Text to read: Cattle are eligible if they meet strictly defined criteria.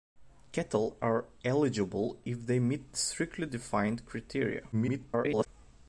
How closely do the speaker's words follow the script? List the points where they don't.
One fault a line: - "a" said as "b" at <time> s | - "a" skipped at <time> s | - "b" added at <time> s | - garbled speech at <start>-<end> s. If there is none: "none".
- garbled speech at 4.7-5.5 s